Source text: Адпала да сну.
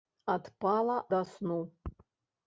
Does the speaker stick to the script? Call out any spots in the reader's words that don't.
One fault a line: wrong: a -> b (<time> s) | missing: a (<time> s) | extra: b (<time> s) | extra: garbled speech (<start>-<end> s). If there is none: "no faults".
no faults